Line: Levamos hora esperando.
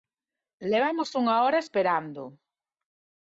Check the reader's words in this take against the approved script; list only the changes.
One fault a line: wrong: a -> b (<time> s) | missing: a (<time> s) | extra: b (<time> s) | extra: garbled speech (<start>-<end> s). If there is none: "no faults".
extra: unha (1.2 s)